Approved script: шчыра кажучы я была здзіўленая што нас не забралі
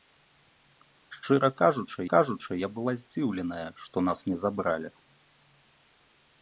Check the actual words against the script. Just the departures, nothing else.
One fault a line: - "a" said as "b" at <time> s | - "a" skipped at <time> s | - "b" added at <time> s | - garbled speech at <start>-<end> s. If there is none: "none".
- "кажучы" added at 2.1 s